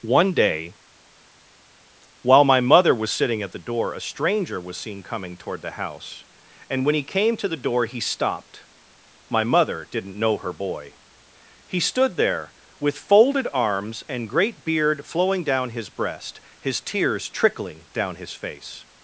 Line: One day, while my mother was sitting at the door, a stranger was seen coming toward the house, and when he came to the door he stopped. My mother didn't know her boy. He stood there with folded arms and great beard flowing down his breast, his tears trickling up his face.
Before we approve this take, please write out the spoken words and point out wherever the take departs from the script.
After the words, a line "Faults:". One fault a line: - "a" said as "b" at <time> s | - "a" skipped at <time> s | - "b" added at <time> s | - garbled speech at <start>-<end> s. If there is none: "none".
One day, while my mother was sitting at the door, a stranger was seen coming toward the house, and when he came to the door he stopped. My mother didn't know her boy. He stood there with folded arms and great beard flowing down his breast, his tears trickling down his face.
Faults:
- "up" said as "down" at 17.9 s